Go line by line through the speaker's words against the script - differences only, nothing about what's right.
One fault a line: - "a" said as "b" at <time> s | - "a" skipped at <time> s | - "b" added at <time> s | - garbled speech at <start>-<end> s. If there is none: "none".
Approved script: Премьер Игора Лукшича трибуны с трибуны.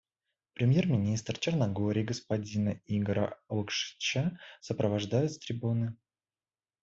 - "министра Черногории господина" added at 0.9 s
- "трибуны" said as "сопровождают" at 4.6 s